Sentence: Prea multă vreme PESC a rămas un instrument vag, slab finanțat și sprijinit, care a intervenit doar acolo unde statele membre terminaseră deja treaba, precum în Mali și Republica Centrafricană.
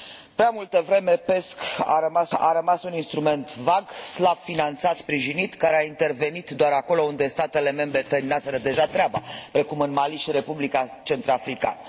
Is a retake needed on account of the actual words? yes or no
yes